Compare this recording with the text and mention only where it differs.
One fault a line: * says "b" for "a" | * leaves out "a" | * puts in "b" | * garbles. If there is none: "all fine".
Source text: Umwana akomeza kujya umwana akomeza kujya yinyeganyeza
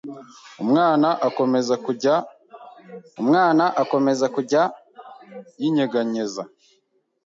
all fine